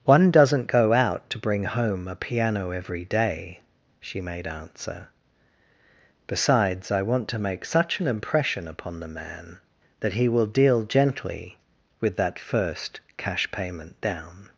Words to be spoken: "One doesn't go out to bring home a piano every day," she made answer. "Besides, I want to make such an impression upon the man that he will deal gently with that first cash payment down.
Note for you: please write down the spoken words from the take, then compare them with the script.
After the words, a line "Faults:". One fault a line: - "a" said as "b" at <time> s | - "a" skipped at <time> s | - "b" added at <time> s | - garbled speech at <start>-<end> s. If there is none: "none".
"One doesn't go out to bring home a piano every day," she made answer. "Besides, I want to make such an impression upon the man that he will deal gently with that first cash payment down.
Faults:
none